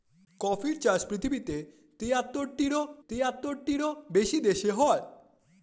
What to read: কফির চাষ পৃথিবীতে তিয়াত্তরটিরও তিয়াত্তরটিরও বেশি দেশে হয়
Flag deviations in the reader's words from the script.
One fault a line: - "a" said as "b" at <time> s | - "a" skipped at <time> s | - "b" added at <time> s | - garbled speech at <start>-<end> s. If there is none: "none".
none